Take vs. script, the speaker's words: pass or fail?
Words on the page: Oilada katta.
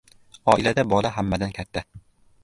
fail